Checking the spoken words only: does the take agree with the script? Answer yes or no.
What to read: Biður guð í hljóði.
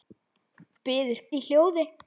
no